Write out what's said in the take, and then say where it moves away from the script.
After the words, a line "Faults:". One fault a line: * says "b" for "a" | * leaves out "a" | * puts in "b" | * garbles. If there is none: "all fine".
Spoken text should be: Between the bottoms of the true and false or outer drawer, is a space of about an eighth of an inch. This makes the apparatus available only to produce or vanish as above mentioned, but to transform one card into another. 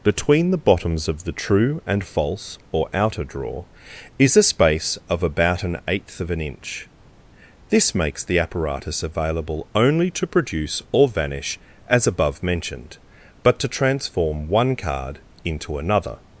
Between the bottoms of the true and false or outer drawer, is a space of about an eighth of an inch. This makes the apparatus available only to produce or vanish as above mentioned, but to transform one card into another.
Faults:
all fine